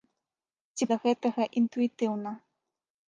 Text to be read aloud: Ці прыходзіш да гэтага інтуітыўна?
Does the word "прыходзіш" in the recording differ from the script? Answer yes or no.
yes